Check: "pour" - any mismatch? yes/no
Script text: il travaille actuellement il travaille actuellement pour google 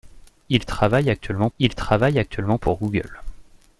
no